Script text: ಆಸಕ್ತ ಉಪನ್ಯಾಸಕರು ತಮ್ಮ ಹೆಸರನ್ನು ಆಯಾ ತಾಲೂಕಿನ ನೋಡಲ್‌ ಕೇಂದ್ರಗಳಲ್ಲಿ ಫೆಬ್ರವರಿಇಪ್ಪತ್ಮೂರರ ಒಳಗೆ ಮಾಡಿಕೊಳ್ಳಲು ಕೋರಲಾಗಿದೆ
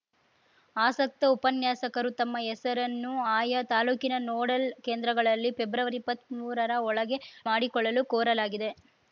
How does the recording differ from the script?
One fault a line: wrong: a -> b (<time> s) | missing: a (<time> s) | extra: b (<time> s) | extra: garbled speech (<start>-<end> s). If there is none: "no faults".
no faults